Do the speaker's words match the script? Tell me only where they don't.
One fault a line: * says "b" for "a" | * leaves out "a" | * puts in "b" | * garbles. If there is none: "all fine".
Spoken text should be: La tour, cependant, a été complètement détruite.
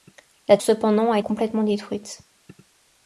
* leaves out "tour"
* leaves out "été"